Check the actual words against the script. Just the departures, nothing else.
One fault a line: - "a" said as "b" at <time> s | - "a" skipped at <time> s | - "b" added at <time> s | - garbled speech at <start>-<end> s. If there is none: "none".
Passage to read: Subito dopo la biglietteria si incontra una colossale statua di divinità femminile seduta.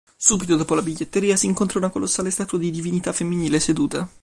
none